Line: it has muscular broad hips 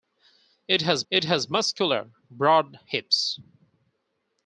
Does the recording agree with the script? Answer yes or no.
no